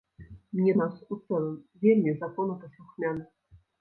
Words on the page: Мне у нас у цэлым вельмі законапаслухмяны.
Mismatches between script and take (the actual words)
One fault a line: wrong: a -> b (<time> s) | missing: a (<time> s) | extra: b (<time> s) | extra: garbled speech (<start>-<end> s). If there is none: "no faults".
no faults